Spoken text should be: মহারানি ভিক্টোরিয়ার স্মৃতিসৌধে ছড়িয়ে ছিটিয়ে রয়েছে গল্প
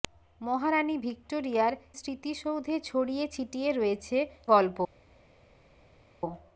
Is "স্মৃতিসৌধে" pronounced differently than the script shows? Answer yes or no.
no